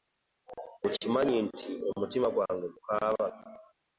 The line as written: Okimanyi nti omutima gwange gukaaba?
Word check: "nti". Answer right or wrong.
right